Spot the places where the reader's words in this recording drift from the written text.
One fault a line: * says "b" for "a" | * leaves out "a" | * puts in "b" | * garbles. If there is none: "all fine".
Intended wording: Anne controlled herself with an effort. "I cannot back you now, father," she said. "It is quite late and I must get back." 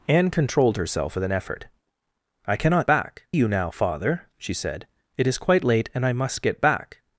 all fine